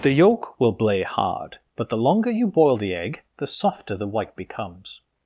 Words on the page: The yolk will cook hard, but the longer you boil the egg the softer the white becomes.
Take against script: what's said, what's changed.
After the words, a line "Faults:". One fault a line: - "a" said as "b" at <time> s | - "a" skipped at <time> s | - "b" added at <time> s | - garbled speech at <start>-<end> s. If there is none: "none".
The yolk will blay hard, but the longer you boil the egg the softer the white becomes.
Faults:
- "cook" said as "blay" at 0.7 s